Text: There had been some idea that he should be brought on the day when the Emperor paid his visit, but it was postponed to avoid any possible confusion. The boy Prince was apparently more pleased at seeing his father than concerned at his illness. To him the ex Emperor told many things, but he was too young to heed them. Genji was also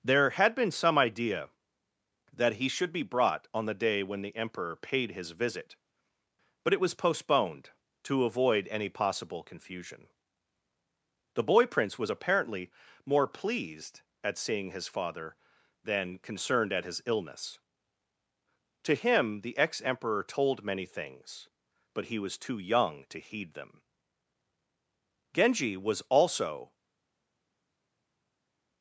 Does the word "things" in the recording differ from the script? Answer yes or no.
no